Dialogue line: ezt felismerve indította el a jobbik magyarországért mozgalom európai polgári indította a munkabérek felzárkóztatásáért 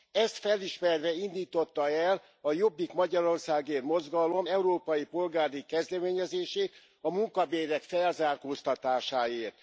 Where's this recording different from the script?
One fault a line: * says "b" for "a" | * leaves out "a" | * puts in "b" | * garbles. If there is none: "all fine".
* says "kezdeményezését" for "indította"